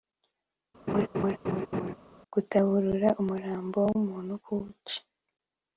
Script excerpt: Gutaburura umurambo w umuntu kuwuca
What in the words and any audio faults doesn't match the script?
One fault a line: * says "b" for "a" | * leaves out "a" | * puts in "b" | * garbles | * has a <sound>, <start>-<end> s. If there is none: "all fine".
* has a laugh, 0.9-1.9 s